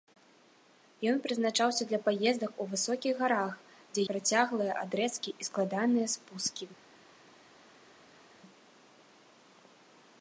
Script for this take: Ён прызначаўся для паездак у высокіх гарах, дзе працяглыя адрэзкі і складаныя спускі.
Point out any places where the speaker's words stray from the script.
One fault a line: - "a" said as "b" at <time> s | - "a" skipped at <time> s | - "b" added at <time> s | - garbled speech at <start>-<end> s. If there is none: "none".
none